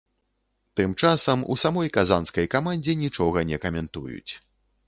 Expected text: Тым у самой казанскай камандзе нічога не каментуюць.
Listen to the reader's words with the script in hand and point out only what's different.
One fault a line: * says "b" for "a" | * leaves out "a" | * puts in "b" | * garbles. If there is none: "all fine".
* puts in "часам"